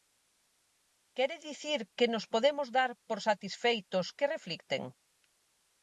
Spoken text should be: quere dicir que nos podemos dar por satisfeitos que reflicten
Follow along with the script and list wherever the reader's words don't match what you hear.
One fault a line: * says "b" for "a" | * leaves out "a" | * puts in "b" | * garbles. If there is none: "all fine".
all fine